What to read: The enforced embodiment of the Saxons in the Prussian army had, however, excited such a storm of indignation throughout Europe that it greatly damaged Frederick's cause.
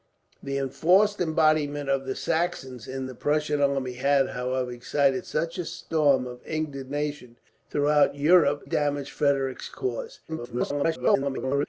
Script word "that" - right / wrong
wrong